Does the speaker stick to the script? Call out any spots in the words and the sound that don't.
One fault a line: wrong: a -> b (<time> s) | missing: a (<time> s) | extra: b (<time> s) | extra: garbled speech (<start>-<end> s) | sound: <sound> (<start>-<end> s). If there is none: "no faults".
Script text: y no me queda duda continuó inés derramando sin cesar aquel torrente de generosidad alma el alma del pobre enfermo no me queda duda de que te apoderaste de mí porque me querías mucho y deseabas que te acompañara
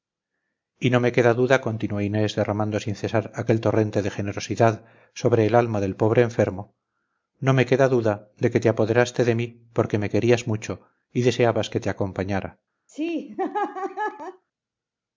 wrong: alma -> sobre (5.1 s)
sound: laugh (12.9-14.4 s)